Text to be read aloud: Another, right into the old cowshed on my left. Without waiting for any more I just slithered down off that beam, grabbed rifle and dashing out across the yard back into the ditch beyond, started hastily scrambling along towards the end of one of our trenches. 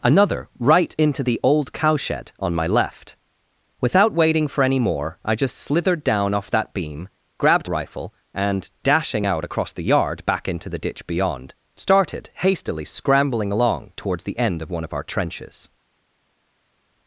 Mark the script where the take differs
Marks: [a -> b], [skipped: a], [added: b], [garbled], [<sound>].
Another, right into the old cowshed on my left. Without waiting for any more I just slithered down off that beam, grabbed rifle and dashing out across the yard back into the ditch beyond, started hastily scrambling along towards the end of one of our trenches.